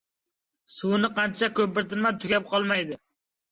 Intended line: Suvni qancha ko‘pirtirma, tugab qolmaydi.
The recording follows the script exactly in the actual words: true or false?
true